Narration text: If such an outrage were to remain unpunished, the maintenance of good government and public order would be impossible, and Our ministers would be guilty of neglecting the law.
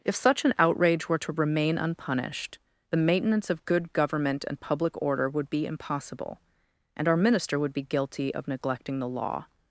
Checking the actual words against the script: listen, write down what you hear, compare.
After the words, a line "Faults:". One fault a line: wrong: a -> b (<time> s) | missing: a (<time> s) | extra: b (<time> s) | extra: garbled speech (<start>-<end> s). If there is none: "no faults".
If such an outrage were to remain unpunished, the maintenance of good government and public order would be impossible, and Our minister would be guilty of neglecting the law.
Faults:
wrong: ministers -> minister (7.2 s)